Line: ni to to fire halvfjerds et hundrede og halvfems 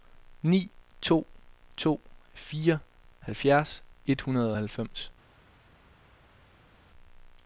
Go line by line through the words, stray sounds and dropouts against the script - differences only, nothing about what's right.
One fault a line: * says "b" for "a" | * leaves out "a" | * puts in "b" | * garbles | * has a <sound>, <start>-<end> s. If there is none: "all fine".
all fine